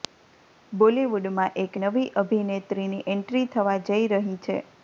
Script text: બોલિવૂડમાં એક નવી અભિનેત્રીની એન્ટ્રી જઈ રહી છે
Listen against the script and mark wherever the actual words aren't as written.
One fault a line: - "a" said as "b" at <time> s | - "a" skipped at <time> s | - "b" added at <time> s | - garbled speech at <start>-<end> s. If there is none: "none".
- "થવા" added at 3.5 s